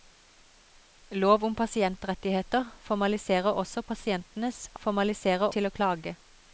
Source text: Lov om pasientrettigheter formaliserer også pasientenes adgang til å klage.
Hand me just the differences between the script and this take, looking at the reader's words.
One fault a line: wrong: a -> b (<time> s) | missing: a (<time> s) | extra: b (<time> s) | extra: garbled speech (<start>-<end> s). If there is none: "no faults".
wrong: adgang -> formaliserer (4.8 s)